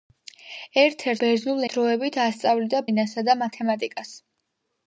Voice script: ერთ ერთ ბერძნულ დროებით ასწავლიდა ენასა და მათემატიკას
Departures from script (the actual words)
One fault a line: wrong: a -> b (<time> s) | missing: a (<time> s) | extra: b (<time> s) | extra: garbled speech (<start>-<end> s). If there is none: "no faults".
no faults